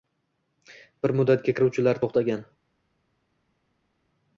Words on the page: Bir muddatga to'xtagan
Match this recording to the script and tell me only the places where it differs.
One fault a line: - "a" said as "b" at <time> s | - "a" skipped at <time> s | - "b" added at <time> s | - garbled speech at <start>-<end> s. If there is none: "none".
- "kiruvchilar" added at 1.6 s